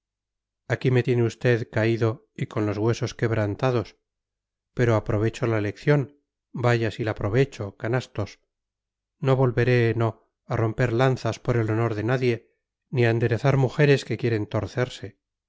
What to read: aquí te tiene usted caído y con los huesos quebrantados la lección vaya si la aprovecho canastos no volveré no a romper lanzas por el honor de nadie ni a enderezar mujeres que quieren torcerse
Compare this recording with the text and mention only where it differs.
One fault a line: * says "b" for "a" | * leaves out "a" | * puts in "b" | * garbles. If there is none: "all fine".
* says "me" for "te"
* puts in "pero aprovecho"